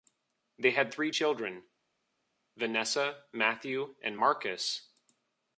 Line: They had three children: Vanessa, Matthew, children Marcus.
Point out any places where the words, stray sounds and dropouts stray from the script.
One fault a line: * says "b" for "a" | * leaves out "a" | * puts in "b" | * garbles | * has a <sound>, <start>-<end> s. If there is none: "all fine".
* says "and" for "children"